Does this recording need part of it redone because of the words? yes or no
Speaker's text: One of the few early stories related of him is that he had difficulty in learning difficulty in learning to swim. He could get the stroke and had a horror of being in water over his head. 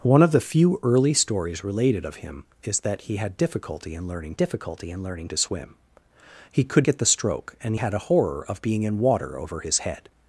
no